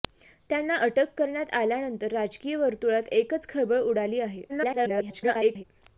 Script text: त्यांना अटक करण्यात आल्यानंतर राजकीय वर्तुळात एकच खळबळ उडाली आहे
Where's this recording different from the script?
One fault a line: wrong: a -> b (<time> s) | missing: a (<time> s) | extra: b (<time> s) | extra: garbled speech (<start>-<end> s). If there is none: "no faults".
extra: garbled speech (4.5-5.6 s)